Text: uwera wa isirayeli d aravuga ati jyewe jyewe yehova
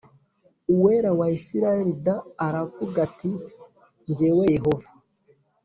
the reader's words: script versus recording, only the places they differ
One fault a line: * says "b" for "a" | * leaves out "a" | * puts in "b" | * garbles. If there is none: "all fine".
* leaves out "jyewe"